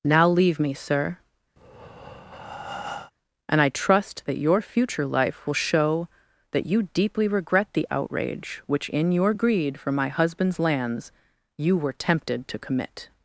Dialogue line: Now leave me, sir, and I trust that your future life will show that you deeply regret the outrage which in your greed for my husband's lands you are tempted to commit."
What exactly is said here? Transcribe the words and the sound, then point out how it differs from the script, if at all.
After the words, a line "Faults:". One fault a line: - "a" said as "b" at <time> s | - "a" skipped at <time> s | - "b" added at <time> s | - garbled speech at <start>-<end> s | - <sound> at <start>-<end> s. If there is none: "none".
Now leave me, sir, and I trust that your future life will show that you deeply regret the outrage which in your greed for my husband's lands you were tempted to commit."
Faults:
- breath at 1.6-3.1 s
- "are" said as "were" at 11.8 s